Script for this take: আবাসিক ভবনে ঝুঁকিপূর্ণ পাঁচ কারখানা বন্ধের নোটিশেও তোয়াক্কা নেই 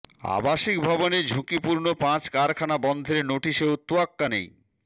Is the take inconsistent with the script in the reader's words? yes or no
no